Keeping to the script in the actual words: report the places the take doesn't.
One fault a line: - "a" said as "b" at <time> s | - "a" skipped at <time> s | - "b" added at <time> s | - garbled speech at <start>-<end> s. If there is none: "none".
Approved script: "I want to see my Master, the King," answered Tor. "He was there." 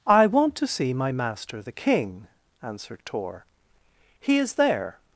- "was" said as "is" at 4.4 s